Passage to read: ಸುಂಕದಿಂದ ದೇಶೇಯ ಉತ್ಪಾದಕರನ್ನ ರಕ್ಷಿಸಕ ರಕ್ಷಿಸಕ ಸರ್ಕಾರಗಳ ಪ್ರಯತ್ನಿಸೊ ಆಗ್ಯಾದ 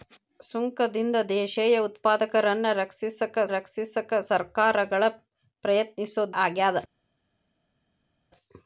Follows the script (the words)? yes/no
yes